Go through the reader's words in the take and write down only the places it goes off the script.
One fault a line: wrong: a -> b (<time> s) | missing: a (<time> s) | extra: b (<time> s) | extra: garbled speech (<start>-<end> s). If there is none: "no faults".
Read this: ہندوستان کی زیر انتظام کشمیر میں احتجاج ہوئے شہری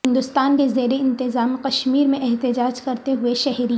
wrong: کی -> کے (0.5 s)
extra: کرتے (2.8 s)